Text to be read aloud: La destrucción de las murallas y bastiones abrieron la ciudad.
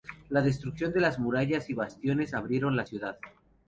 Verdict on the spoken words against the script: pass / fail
pass